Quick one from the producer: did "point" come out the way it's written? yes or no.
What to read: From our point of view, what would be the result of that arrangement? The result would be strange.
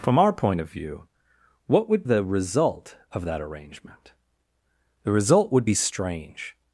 yes